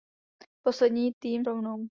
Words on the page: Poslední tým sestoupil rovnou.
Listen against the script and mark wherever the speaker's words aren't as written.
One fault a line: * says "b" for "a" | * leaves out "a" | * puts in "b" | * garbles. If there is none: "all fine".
* leaves out "sestoupil"